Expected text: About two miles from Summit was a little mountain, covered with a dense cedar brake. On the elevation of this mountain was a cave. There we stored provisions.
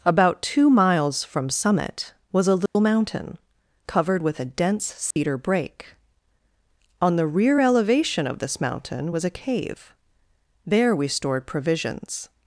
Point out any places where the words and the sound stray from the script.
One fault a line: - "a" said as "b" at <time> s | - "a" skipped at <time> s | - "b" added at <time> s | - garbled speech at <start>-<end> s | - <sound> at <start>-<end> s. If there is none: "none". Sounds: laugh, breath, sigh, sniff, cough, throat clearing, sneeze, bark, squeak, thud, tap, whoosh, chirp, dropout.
- dropout at 2.7-2.8 s
- dropout at 5.1-5.2 s
- "rear" added at 7.3 s